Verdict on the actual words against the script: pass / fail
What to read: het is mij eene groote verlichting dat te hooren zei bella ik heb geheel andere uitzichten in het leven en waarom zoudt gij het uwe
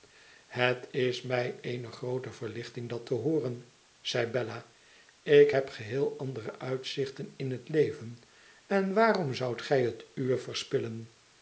pass